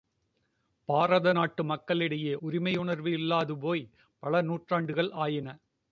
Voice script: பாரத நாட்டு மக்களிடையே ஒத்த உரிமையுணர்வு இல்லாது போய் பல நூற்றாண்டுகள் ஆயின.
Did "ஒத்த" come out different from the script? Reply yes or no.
yes